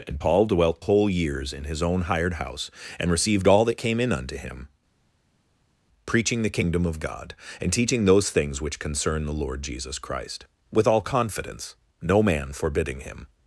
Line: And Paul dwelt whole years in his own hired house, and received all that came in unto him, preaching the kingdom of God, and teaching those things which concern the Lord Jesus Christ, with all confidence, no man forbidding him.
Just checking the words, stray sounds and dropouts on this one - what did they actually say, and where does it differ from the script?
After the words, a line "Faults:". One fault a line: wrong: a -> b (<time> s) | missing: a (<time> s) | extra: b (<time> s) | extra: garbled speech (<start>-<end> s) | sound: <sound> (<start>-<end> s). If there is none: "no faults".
And Paul dwelt whole years in his own hired house, and received all that came in unto him, preaching the kingdom of God, and teaching those things which concern the Lord Jesus Christ, with all confidence, no man forbidding him.
Faults:
no faults